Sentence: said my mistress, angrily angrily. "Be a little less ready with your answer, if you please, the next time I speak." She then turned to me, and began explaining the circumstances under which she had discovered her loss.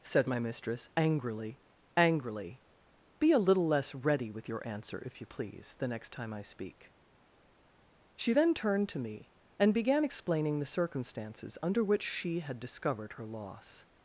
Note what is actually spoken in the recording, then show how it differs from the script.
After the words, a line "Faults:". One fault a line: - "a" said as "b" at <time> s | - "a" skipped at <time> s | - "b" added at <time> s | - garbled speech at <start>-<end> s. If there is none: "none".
said my mistress, angrily angrily. "Be a little less ready with your answer, if you please, the next time I speak." She then turned to me, and began explaining the circumstances under which she had discovered her loss.
Faults:
none